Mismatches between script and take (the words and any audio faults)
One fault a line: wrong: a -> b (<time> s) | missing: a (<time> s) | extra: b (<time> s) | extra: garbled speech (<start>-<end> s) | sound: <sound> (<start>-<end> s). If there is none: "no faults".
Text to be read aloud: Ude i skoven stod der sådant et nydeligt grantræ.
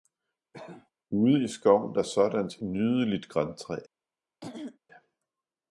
sound: cough (0.5-0.9 s)
missing: stod (2.0 s)
missing: et (2.6 s)
sound: throat clearing (4.4-4.8 s)